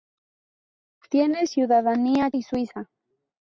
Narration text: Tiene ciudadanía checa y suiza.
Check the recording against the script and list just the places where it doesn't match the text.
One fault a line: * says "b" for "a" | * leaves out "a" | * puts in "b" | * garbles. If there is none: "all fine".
* leaves out "checa"